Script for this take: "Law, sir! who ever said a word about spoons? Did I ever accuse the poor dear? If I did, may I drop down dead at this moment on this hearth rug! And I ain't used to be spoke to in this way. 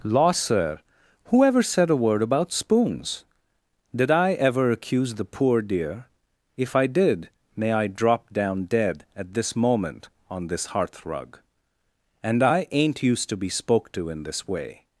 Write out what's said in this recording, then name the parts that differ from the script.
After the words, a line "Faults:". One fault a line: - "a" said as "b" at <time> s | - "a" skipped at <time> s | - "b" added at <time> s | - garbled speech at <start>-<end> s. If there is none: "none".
"Law, sir! who ever said a word about spoons? Did I ever accuse the poor dear? If I did, may I drop down dead at this moment on this hearth rug! And I ain't used to be spoke to in this way.
Faults:
none